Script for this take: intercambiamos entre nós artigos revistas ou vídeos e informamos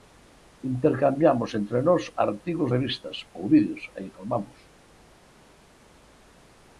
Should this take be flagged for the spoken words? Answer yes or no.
no